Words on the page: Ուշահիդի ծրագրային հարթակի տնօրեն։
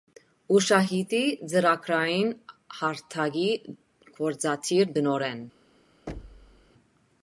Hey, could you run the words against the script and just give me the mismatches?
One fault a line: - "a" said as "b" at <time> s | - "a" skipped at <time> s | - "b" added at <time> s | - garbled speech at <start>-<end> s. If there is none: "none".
- "գործադիր" added at 4.2 s